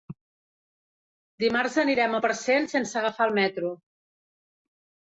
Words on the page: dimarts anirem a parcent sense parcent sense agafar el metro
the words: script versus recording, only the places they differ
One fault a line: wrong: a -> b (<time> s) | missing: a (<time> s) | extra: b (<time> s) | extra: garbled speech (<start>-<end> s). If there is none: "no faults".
missing: parcent sense (3.0 s)